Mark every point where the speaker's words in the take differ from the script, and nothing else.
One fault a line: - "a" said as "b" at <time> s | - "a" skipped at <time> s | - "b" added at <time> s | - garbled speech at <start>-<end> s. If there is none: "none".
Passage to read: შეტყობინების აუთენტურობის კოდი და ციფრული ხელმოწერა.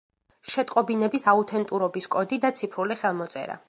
none